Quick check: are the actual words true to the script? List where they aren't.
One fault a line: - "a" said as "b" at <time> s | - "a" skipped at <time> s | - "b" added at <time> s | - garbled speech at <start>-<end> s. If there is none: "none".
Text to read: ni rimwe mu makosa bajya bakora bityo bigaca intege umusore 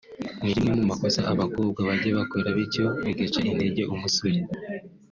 - "abakobwa" added at 1.3 s